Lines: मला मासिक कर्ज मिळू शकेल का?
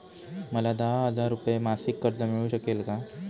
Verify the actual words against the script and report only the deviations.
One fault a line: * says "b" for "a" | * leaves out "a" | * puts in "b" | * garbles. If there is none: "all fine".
* puts in "दहा हजार रुपये"